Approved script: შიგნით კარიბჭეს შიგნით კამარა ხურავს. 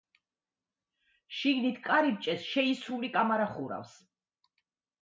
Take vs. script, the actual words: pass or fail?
fail